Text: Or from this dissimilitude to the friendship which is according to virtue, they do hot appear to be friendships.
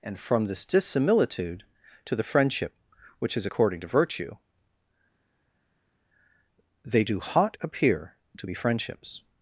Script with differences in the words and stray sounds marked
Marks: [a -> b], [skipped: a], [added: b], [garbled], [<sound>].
[Or -> And] from this dissimilitude to the friendship which is according to virtue, they do hot appear to be friendships.